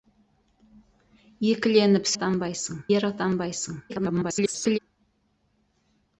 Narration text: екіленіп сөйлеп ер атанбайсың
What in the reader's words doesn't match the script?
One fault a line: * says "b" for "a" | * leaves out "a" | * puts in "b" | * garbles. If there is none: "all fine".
* says "атанбайсың" for "сөйлеп"
* garbles